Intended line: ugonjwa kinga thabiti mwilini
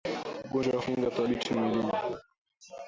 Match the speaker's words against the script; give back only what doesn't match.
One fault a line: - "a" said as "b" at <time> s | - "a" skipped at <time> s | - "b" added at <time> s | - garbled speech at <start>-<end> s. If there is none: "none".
none